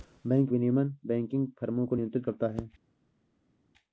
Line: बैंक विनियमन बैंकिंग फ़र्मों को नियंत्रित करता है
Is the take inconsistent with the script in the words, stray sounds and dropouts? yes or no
no